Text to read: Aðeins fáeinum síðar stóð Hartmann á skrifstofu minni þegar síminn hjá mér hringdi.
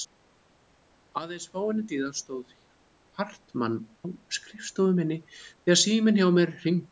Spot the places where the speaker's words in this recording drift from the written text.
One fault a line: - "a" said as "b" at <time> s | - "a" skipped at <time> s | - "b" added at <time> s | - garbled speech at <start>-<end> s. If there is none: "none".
none